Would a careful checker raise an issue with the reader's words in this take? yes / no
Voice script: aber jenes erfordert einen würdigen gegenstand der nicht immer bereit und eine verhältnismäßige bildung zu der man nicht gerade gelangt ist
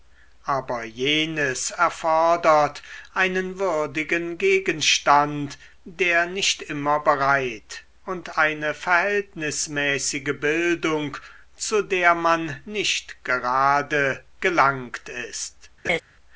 no